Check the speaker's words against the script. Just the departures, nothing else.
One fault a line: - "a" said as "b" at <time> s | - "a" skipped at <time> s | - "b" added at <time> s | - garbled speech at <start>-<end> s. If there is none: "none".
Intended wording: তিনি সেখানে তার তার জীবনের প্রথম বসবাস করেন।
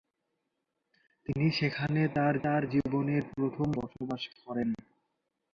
none